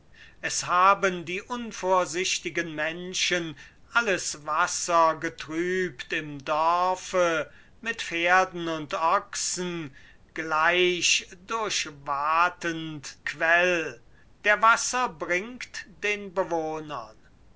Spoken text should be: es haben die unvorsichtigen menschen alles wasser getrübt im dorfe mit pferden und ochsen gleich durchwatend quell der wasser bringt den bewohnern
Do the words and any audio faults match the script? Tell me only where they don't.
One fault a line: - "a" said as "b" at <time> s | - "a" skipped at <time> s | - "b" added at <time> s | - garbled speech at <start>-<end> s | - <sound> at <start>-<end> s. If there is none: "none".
none